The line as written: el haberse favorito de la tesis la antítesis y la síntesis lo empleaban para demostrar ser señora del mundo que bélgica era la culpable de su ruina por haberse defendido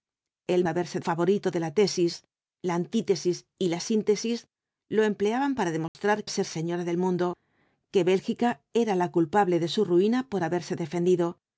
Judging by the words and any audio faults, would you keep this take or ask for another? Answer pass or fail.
fail